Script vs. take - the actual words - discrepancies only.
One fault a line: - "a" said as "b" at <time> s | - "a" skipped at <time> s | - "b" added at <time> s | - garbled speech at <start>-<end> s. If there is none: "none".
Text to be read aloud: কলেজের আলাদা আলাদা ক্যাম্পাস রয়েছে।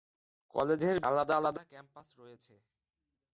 none